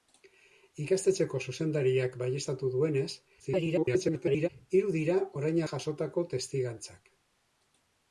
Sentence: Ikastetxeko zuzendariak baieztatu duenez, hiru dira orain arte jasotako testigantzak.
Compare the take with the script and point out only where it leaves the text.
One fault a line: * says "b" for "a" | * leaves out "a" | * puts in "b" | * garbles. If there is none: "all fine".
* garbles
* leaves out "arte"